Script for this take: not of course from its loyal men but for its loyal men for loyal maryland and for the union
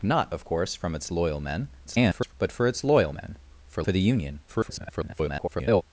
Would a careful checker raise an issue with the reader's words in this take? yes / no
yes